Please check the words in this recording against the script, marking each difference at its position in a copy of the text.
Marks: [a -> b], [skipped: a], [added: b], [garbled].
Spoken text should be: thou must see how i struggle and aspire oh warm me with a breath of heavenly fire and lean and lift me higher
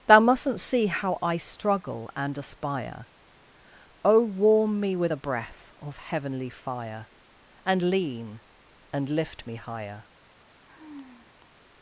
thou [must -> mustn't] see how i struggle and aspire oh warm me with a breath of heavenly fire and lean and lift me higher